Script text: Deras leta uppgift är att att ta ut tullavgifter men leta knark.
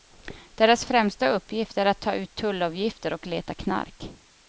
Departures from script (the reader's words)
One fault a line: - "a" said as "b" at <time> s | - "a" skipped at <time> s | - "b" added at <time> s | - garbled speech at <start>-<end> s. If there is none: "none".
- "leta" said as "främsta" at 0.8 s
- "att" skipped at 2.0 s
- "men" said as "och" at 3.1 s